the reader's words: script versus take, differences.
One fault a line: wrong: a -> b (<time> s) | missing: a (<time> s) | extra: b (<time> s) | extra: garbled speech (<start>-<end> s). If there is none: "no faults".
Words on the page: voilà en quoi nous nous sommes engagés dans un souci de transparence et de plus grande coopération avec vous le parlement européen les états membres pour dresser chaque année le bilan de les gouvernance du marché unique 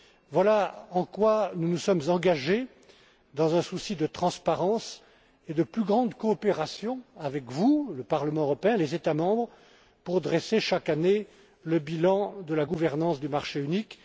wrong: les -> la (12.5 s)